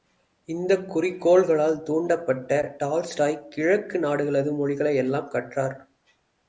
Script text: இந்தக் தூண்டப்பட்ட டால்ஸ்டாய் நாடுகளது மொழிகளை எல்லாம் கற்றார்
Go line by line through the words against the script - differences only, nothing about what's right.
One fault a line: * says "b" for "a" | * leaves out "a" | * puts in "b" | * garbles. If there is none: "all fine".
* puts in "குறிக்கோள்களால்"
* puts in "கிழக்கு"